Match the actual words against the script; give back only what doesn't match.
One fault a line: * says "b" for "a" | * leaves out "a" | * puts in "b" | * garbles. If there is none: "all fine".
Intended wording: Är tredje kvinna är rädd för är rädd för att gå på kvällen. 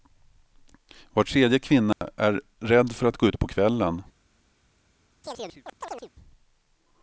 * says "Var" for "Är"
* leaves out "är rädd för"
* puts in "ut"